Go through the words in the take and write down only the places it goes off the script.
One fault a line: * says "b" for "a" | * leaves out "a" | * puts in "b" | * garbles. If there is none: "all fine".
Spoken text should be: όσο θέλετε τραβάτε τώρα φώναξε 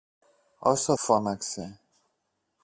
* leaves out "θέλετε τραβάτε τώρα"